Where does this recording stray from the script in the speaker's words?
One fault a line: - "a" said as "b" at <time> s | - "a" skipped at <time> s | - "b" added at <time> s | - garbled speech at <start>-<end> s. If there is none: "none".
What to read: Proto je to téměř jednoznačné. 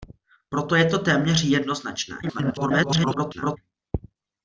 - garbled speech at 2.2-3.6 s